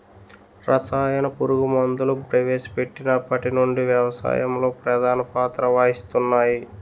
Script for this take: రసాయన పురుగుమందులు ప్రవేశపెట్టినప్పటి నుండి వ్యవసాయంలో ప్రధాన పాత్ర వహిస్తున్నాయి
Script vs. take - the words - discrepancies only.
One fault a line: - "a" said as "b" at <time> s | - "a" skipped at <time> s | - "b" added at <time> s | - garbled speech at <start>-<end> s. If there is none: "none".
none